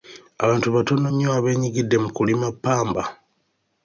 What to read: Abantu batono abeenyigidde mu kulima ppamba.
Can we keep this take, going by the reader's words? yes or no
no